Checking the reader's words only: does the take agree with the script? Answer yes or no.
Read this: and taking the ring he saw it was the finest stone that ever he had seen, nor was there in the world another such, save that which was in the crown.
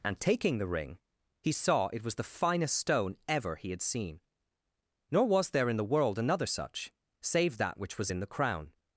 no